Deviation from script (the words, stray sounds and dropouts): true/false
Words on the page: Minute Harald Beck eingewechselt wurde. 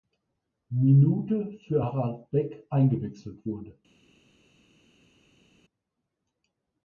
true